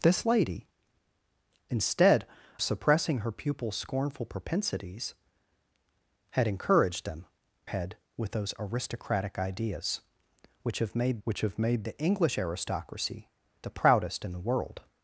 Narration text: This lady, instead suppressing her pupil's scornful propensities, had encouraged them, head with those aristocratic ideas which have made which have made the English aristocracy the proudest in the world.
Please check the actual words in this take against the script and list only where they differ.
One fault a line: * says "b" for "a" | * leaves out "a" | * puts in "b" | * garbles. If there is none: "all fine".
all fine